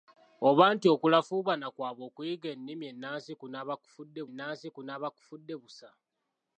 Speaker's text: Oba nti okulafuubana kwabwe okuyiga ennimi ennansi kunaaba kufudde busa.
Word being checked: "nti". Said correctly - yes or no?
yes